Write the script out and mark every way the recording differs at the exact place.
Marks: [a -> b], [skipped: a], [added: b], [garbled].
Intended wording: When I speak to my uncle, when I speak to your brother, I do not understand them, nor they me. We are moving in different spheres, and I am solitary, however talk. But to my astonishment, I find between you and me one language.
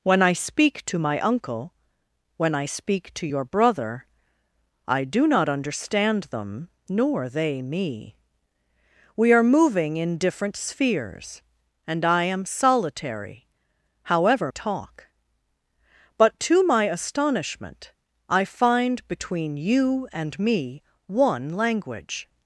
When I speak to my uncle, when I speak to your brother, I do not understand them, nor they me. We are moving in different spheres, and I am solitary, however talk. But to my astonishment, I find between you and me one language.